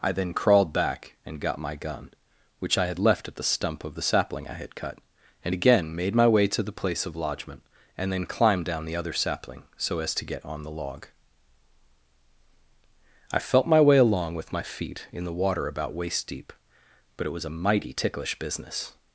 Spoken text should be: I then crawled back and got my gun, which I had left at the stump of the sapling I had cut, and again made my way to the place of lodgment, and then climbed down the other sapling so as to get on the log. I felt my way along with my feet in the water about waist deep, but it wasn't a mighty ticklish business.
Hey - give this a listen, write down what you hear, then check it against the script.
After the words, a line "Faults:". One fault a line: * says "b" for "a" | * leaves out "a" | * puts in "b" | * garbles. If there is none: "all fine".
I then crawled back and got my gun, which I had left at the stump of the sapling I had cut, and again made my way to the place of lodgment, and then climbed down the other sapling so as to get on the log. I felt my way along with my feet in the water about waist deep, but it was a mighty ticklish business.
Faults:
* says "was" for "wasn't"